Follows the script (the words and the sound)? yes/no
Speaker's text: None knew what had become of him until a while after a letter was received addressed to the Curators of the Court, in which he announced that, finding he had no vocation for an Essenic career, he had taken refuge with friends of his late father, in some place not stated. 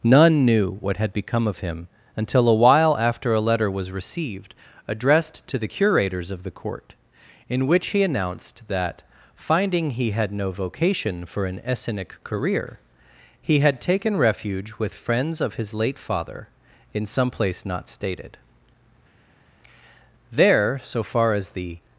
no